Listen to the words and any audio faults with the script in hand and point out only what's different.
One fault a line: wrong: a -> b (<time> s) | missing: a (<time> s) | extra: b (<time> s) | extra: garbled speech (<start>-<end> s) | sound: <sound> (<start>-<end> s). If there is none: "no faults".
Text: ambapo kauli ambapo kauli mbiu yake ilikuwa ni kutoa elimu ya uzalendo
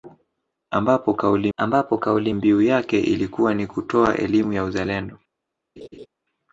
sound: laugh (5.8-6.1 s)